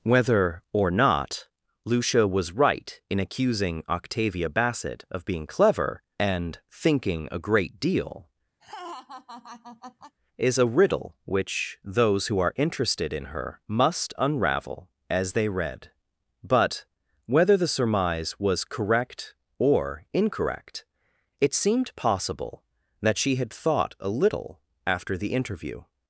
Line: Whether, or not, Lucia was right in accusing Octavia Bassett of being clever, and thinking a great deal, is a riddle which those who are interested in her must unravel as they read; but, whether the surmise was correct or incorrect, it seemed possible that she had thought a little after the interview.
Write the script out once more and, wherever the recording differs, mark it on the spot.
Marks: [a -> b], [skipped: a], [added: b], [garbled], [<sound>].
Whether, or not, Lucia was right in accusing Octavia Bassett of being clever, and thinking a great deal, [laugh] is a riddle which those who are interested in her must unravel as they read; but, whether the surmise was correct or incorrect, it seemed possible that she had thought a little after the interview.